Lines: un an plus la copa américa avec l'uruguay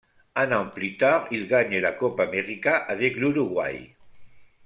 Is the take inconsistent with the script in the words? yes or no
yes